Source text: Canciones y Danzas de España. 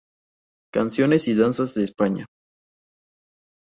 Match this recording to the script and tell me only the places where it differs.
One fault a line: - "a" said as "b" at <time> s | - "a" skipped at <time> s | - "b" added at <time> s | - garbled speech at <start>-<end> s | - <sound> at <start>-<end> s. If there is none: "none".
none